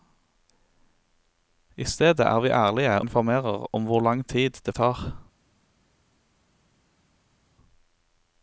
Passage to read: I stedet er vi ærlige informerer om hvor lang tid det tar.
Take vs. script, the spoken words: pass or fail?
pass